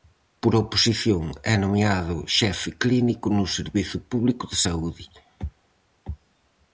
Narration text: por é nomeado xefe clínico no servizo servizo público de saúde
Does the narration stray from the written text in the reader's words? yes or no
yes